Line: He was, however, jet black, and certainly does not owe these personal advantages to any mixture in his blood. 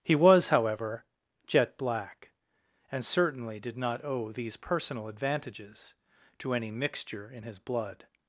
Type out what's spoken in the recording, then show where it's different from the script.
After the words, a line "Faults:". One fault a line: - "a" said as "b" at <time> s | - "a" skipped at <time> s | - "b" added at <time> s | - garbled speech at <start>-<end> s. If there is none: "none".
He was, however, jet black, and certainly did not owe these personal advantages to any mixture in his blood.
Faults:
- "does" said as "did" at 3.6 s